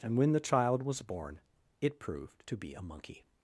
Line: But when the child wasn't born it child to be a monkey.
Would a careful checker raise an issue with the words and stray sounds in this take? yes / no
yes